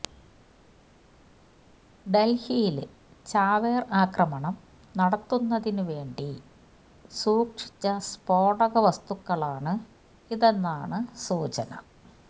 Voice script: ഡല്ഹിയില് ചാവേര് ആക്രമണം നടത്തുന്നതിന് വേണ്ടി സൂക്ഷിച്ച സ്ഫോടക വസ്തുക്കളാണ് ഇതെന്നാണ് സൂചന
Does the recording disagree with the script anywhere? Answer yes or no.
no